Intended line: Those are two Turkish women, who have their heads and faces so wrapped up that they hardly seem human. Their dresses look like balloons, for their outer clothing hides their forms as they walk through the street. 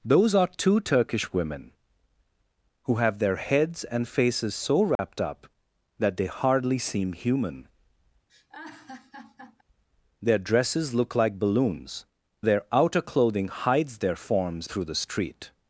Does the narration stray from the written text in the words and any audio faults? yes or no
yes